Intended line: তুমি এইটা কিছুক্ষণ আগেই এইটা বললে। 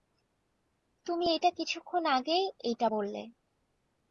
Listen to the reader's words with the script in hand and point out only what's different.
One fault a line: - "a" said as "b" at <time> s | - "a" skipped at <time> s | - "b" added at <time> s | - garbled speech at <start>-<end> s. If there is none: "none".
none